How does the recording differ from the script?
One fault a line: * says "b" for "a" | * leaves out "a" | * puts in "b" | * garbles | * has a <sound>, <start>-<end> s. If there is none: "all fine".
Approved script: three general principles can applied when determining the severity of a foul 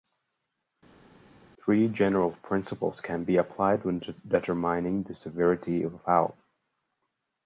* puts in "be"